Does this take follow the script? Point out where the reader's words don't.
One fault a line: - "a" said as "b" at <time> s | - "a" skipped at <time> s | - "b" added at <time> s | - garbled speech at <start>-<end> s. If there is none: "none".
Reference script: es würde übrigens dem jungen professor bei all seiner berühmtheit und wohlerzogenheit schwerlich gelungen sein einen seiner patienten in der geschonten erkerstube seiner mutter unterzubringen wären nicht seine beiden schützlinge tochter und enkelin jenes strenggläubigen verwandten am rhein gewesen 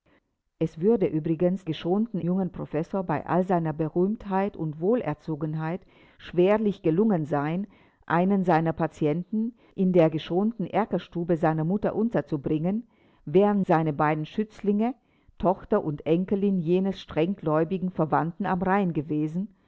- "dem" said as "geschonten" at 1.6 s
- "nicht" skipped at 13.7 s